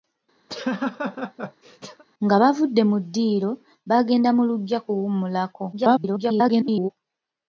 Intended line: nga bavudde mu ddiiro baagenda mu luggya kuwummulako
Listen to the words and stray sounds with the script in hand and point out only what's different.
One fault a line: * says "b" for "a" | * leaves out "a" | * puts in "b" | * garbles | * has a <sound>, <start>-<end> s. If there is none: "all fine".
* has a laugh, 0.5-2.0 s
* garbles